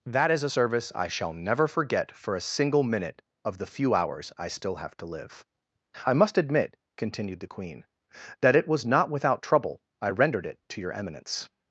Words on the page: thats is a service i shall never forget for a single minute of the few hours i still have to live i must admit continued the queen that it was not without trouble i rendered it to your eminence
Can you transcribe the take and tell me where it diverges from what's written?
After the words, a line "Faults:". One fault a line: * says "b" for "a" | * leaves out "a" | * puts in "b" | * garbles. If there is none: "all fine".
that is a service i shall never forget for a single minute of the few hours i still have to live i must admit continued the queen that it was not without trouble i rendered it to your eminence
Faults:
* says "that" for "thats"